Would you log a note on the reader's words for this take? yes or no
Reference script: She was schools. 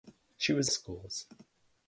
no